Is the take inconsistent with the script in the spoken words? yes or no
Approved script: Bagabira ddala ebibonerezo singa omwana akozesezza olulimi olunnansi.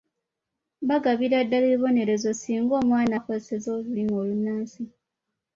no